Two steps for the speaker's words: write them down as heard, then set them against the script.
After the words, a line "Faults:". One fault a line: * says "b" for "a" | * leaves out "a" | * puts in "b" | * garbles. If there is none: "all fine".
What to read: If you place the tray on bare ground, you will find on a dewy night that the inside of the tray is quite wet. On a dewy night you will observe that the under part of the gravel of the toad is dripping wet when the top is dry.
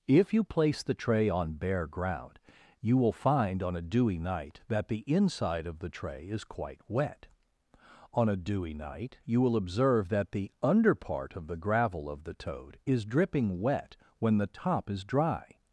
If you place the tray on bare ground, you will find on a dewy night that the inside of the tray is quite wet. On a dewy night you will observe that the under part of the gravel of the toad is dripping wet when the top is dry.
Faults:
all fine